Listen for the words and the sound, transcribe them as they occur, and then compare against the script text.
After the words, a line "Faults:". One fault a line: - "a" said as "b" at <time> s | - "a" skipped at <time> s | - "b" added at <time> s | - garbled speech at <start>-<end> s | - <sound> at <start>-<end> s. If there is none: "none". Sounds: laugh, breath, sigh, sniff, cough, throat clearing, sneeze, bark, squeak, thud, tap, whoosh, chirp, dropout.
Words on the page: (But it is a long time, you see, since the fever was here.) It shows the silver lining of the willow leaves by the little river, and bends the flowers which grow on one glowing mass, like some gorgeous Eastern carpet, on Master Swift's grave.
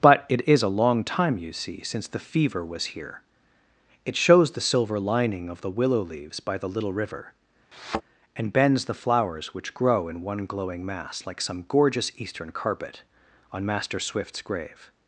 (But it is a long time, you see, since the fever was here.) It shows the silver lining of the willow leaves by the little river, and bends the flowers which grow in one glowing mass, like some gorgeous Eastern carpet, on Master Swift's grave.
Faults:
- thud at 7.7-8.0 s
- "on" said as "in" at 10.1 s